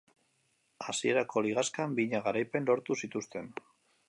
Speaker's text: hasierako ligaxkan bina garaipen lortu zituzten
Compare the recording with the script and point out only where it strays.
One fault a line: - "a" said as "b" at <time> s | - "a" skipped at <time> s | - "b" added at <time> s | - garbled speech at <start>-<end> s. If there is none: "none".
none